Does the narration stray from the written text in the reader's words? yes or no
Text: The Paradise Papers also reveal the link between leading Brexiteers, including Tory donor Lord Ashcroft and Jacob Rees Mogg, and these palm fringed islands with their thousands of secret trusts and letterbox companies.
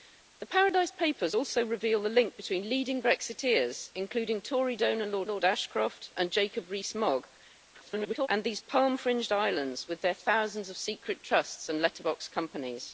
yes